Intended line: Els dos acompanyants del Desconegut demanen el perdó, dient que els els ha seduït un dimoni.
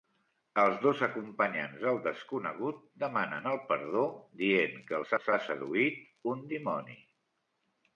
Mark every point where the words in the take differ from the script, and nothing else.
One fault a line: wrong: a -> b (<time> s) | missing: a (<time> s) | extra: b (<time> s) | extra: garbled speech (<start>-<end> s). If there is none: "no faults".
no faults